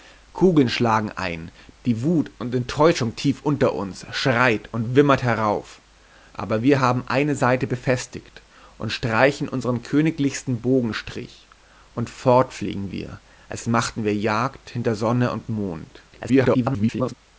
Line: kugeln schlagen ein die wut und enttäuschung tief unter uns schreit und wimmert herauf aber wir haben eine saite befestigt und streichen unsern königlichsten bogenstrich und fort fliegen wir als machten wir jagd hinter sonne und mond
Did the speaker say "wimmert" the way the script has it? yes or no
yes